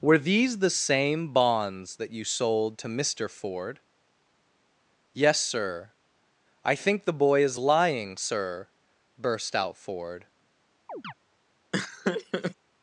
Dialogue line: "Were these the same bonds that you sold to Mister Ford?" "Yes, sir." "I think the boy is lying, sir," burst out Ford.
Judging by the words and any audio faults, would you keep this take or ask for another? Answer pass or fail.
fail